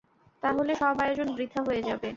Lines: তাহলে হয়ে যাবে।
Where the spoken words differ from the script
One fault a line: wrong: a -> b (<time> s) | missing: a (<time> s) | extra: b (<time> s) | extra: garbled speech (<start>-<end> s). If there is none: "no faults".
extra: সব আয়োজন বৃথা (0.7 s)